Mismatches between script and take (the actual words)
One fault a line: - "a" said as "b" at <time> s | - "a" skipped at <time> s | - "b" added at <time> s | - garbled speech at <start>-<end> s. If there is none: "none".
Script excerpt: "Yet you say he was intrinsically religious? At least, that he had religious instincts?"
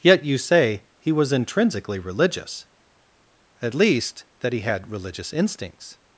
none